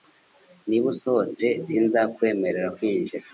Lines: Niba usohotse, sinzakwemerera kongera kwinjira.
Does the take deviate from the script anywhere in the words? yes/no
yes